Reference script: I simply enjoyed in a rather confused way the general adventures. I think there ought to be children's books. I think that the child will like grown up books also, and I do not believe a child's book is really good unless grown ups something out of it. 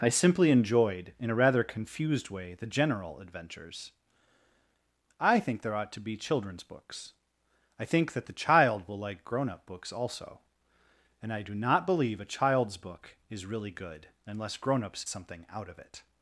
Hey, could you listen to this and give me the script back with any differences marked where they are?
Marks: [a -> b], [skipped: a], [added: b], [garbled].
I simply enjoyed in a rather confused way the general adventures. I think there ought to be children's books. I think that the child will like grown up books also, and I do not believe a child's book is really good unless grown ups something out of it.